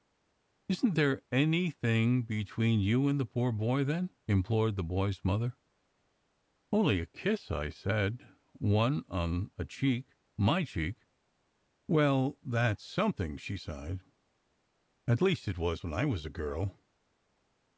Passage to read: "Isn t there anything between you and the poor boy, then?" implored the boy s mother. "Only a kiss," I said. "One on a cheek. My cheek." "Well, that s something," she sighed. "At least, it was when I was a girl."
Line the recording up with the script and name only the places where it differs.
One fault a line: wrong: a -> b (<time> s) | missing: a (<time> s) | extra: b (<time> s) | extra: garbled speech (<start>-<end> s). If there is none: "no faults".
no faults